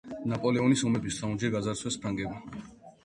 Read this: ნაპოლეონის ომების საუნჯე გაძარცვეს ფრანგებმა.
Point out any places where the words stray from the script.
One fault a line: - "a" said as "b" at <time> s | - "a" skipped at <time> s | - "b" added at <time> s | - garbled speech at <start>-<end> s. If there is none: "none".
none